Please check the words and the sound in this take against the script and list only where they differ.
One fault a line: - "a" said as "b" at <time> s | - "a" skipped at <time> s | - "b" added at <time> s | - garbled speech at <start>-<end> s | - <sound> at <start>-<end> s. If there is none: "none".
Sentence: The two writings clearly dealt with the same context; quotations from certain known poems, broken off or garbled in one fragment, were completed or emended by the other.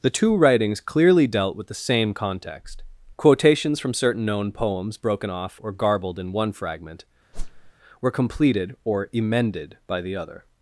- whoosh at 7.3-7.7 s